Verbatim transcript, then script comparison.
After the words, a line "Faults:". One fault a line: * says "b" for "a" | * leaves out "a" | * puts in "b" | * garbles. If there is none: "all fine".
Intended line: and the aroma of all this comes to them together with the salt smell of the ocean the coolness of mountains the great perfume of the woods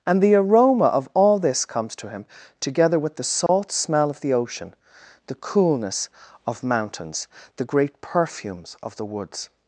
and the aroma of all this comes to him together with the salt smell of the ocean the coolness of mountains the great perfumes of the woods
Faults:
* says "him" for "them"
* says "perfumes" for "perfume"